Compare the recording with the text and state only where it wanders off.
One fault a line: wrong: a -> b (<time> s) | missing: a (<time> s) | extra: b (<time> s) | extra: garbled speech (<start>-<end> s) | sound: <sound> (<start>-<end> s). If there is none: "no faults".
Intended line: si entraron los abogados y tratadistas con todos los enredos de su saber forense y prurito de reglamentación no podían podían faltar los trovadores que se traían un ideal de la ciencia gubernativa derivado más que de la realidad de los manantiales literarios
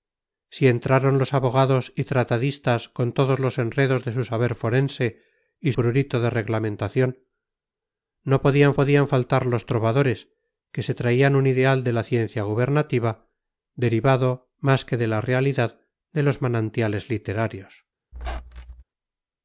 sound: squeak (18.1-18.8 s)